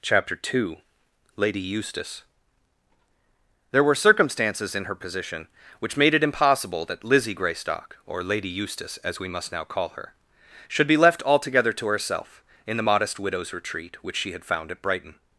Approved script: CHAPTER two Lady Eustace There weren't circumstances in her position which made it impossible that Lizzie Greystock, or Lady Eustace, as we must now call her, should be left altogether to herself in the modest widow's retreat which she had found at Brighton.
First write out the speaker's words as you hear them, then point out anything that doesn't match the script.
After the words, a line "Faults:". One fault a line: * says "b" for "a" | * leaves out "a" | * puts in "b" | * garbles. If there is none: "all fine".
CHAPTER two Lady Eustace There were circumstances in her position which made it impossible that Lizzie Greystock, or Lady Eustace, as we must now call her, should be left altogether to herself in the modest widow's retreat which she had found at Brighton.
Faults:
* says "were" for "weren't"